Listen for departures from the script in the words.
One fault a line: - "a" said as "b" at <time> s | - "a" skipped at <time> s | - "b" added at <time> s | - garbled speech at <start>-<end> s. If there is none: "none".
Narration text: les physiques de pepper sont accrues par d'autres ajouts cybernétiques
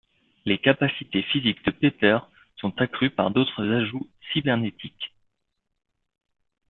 - "capacités" added at 0.6 s